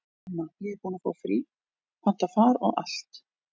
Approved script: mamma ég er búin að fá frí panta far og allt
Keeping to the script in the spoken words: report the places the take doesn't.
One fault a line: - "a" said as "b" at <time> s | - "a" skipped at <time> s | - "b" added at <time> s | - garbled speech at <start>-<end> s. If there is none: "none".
none